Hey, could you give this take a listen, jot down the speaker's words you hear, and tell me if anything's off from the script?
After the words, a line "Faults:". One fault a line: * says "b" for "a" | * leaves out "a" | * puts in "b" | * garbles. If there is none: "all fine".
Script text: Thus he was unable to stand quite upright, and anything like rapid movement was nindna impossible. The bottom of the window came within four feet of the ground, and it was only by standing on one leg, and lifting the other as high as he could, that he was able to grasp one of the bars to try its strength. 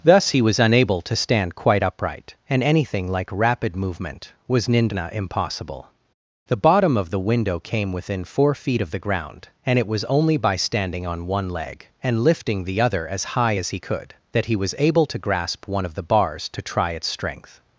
Thus he was unable to stand quite upright, and anything like rapid movement was nindna impossible. The bottom of the window came within four feet of the ground, and it was only by standing on one leg, and lifting the other as high as he could, that he was able to grasp one of the bars to try its strength.
Faults:
all fine